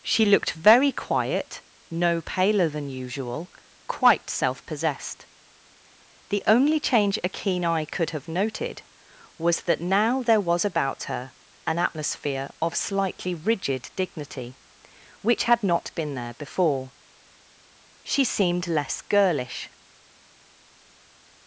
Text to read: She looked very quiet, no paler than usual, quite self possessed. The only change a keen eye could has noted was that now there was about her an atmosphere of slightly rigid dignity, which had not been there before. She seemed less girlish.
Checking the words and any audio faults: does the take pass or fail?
fail